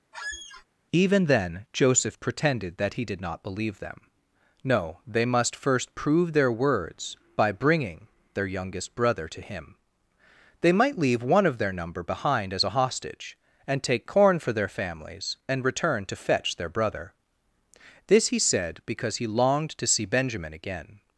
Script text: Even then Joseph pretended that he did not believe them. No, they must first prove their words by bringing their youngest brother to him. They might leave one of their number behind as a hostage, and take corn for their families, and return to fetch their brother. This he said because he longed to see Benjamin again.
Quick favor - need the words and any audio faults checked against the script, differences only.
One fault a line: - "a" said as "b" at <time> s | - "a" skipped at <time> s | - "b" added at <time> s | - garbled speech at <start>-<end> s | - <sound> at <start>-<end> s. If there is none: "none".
- squeak at 0.1-0.7 s